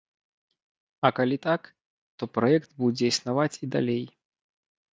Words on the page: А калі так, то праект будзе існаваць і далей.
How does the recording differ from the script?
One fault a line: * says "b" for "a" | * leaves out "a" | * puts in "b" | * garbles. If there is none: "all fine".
all fine